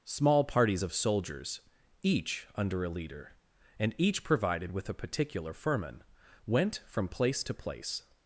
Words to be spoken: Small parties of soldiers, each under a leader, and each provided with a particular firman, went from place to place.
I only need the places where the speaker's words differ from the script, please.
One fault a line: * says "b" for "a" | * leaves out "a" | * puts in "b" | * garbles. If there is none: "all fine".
all fine